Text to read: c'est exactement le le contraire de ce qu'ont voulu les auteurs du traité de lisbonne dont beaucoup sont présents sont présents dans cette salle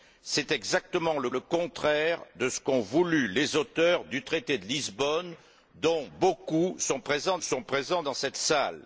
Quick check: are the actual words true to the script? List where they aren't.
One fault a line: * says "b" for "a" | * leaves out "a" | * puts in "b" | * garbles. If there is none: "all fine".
all fine